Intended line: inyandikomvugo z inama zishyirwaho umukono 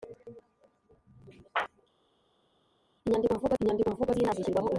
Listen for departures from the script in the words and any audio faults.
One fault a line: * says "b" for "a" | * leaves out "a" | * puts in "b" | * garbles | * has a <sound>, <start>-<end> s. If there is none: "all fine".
* puts in "inyandikomvugo"